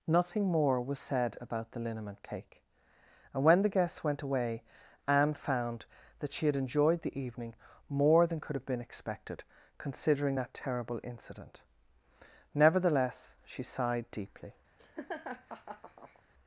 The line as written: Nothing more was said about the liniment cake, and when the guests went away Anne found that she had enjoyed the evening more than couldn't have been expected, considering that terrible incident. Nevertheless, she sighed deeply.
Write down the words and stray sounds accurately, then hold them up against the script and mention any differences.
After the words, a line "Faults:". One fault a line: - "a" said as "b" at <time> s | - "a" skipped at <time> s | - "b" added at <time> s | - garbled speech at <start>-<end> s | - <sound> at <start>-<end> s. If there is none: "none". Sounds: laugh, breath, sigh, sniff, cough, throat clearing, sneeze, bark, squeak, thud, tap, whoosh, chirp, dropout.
Nothing more was said about the liniment cake, and when the guests went away Anne found that she had enjoyed the evening more than could have been expected, considering that terrible incident. Nevertheless, she sighed deeply.
Faults:
- "couldn't" said as "could" at 8.4 s
- laugh at 14.8-16.2 s